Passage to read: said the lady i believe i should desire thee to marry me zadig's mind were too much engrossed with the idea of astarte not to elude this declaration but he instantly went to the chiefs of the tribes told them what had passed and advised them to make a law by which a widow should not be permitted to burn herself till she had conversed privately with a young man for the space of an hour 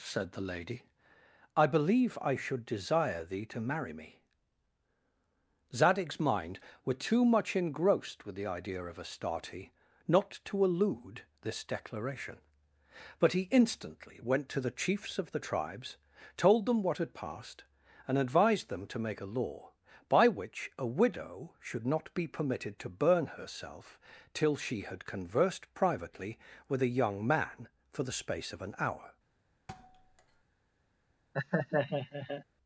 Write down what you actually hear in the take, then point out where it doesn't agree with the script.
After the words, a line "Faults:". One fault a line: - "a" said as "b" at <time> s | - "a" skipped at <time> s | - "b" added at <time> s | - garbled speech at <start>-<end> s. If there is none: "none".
said the lady i believe i should desire thee to marry me zadig's mind were too much engrossed with the idea of astarte not to elude this declaration but he instantly went to the chiefs of the tribes told them what had passed and advised them to make a law by which a widow should not be permitted to burn herself till she had conversed privately with a young man for the space of an hour
Faults:
none